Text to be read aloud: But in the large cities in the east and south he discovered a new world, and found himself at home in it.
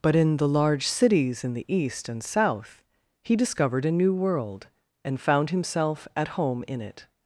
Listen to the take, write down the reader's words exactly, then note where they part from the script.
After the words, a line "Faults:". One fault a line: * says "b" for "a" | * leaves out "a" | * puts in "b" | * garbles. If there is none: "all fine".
But in the large cities in the east and south he discovered a new world, and found himself at home in it.
Faults:
all fine